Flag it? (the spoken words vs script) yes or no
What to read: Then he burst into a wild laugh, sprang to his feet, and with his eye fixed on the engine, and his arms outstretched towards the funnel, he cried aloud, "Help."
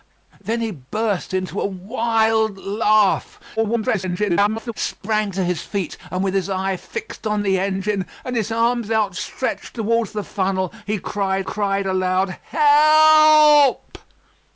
yes